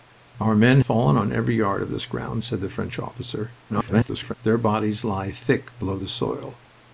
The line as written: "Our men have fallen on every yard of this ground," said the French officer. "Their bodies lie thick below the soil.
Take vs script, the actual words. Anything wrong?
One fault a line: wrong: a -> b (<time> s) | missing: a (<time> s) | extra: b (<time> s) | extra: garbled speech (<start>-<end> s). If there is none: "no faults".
missing: have (0.8 s)
extra: garbled speech (3.7-4.3 s)